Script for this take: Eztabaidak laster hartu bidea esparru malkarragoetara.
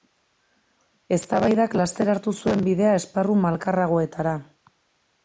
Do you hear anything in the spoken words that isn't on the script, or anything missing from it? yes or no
yes